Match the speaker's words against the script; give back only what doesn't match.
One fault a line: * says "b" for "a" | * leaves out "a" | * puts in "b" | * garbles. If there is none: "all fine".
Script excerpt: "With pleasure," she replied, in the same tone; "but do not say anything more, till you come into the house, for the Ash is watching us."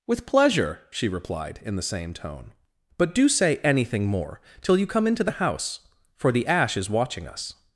* leaves out "not"